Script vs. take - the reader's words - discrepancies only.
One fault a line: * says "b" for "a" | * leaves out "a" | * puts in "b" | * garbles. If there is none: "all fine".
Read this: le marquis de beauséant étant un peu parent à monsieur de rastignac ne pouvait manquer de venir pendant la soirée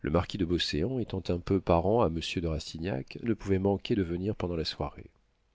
all fine